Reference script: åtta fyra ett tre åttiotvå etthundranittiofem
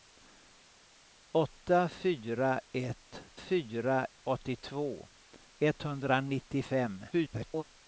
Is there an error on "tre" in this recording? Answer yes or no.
yes